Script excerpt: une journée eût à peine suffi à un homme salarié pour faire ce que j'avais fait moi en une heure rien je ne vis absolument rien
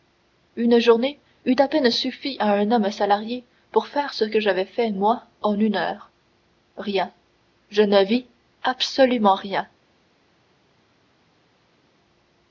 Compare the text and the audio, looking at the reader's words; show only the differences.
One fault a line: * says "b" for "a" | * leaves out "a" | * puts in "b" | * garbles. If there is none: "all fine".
all fine